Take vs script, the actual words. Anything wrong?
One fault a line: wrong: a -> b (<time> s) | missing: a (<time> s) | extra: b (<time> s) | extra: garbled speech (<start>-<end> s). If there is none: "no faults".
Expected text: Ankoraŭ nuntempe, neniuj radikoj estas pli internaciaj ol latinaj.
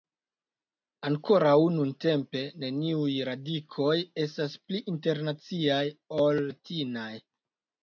no faults